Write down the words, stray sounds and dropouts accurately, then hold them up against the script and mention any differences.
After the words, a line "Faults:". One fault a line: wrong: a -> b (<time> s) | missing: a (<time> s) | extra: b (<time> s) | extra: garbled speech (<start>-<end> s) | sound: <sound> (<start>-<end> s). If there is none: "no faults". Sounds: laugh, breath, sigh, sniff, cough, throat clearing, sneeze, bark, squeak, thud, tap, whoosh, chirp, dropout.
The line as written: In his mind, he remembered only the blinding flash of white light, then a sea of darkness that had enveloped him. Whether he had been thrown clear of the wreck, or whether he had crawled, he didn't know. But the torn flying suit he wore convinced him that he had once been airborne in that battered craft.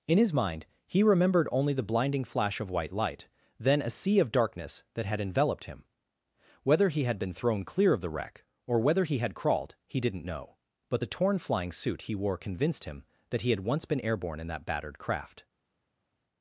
In his mind, he remembered only the blinding flash of white light, then a sea of darkness that had enveloped him. Whether he had been thrown clear of the wreck, or whether he had crawled, he didn't know. But the torn flying suit he wore convinced him that he had once been airborne in that battered craft.
Faults:
no faults